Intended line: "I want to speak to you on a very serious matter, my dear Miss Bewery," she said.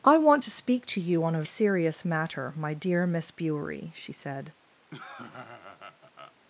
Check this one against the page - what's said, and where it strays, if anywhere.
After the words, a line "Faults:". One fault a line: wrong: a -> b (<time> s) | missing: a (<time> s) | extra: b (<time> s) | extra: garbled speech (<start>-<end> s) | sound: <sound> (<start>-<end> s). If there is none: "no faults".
"I want to speak to you on a serious matter, my dear Miss Bewery," she said.
Faults:
missing: very (1.4 s)
sound: laugh (4.9-6.4 s)